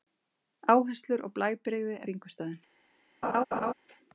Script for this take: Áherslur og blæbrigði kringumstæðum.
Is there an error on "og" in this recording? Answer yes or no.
no